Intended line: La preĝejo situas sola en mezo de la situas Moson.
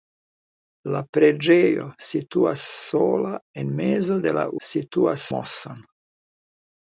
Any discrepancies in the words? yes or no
no